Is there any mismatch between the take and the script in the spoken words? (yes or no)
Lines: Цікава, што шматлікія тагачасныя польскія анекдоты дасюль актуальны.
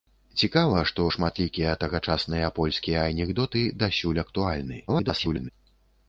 yes